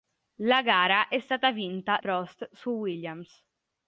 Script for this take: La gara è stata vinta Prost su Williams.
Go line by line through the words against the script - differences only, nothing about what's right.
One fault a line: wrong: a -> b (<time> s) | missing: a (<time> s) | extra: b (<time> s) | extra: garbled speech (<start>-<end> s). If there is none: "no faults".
no faults